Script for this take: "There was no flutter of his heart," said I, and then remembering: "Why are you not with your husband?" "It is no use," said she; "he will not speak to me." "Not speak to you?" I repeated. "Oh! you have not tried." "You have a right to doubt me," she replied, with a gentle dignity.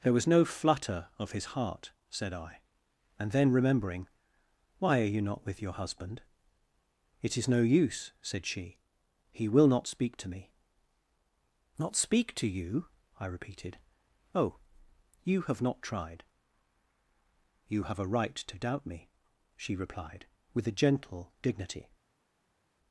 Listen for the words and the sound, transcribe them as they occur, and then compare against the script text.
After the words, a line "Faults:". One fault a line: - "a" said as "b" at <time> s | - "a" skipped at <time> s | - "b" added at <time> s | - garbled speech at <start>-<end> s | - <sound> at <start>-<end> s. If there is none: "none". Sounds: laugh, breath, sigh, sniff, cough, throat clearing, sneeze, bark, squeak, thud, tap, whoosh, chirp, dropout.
"There was no flutter of his heart," said I, and then remembering: "Why are you not with your husband?" "It is no use," said she; "he will not speak to me." "Not speak to you?" I repeated. "Oh! you have not tried." "You have a right to doubt me," she replied, with a gentle dignity.
Faults:
none